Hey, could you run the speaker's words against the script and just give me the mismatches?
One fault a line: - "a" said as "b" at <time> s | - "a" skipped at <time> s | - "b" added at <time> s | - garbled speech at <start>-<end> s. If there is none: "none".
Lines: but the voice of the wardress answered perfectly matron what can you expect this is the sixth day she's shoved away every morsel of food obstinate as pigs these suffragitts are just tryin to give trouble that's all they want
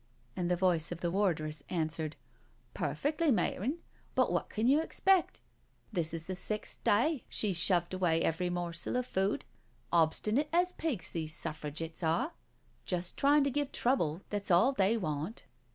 - "but" said as "and" at 0.3 s
- "but" added at 4.1 s